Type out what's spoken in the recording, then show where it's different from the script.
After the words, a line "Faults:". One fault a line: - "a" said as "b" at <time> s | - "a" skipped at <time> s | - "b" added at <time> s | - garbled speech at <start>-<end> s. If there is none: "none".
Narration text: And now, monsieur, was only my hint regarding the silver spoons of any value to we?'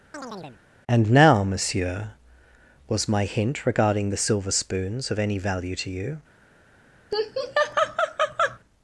And now, monsieur, was my hint regarding the silver spoons of any value to you?'
Faults:
- "only" skipped at 3.1 s
- "we" said as "you" at 5.9 s